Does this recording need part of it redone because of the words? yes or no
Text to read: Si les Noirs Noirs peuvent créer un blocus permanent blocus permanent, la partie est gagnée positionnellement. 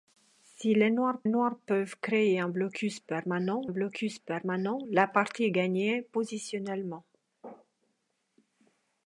no